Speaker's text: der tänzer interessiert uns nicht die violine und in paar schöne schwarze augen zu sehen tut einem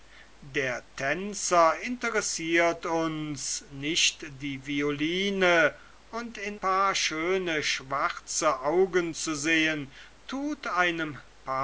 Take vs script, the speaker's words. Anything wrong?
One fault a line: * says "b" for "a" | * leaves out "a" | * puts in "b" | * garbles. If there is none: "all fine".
all fine